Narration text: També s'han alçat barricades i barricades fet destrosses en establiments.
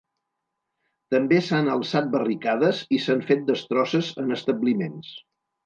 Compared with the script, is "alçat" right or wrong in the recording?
right